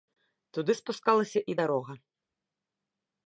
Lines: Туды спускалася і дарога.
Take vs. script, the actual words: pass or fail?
pass